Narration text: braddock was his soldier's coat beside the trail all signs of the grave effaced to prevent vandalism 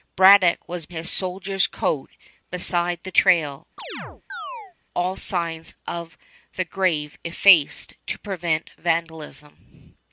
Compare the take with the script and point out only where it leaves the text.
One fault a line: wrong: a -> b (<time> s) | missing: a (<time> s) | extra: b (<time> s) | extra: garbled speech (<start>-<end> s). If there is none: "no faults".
no faults